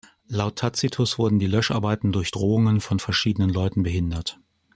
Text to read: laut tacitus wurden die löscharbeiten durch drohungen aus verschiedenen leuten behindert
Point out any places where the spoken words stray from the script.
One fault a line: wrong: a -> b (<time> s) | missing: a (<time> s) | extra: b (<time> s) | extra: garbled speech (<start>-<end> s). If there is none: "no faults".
wrong: aus -> von (2.8 s)